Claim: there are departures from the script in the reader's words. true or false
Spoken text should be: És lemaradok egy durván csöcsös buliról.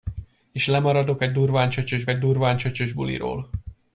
true